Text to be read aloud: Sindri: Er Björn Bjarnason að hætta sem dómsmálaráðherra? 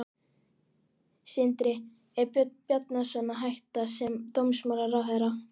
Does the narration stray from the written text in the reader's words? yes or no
no